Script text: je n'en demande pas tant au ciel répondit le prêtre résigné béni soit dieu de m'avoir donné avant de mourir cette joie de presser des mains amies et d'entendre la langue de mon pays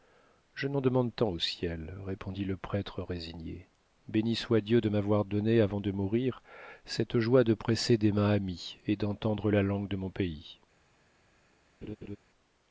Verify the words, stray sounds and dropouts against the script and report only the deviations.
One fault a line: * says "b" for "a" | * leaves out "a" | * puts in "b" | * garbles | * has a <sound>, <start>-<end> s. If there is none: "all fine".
* leaves out "pas"
* has a laugh, 11.8-12.2 s